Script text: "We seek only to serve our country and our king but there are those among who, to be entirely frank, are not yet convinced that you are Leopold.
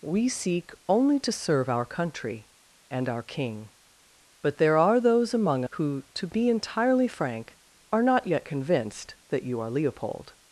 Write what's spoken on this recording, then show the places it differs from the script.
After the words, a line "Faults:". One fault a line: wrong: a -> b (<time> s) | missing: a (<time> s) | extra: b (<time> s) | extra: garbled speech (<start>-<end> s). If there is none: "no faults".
"We seek only to serve our country and our king but there are those among who, to be entirely frank, are not yet convinced that you are Leopold.
Faults:
no faults